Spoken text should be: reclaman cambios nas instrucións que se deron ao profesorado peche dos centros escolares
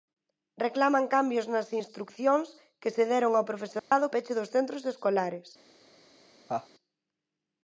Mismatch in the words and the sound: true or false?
true